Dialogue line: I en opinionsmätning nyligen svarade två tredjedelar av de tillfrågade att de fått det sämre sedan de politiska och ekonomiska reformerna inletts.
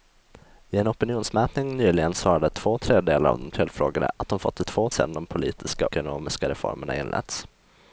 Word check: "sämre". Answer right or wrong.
wrong